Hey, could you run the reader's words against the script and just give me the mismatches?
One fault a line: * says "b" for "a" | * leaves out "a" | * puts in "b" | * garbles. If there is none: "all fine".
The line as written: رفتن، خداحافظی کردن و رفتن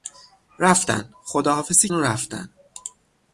* leaves out "کردن"